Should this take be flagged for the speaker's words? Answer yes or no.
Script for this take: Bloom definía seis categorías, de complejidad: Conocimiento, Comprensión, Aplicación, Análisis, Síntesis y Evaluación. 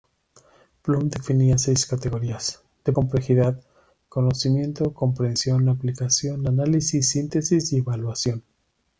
no